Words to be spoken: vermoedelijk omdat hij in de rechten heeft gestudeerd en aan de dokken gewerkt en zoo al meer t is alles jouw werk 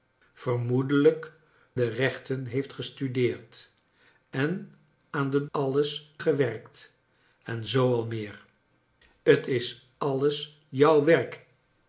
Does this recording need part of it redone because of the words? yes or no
yes